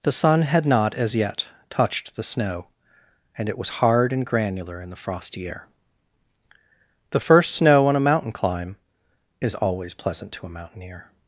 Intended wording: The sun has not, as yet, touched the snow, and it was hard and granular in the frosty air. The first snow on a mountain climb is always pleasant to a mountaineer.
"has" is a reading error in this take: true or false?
true